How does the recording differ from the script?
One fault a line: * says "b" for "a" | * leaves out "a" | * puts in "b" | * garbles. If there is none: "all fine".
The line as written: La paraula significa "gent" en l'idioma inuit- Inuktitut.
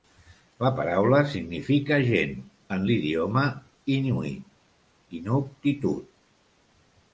all fine